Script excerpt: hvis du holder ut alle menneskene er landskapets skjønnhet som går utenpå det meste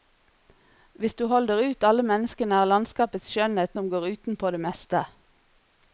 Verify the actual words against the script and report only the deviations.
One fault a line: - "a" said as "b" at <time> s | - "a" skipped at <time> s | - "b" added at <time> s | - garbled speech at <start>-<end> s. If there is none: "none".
none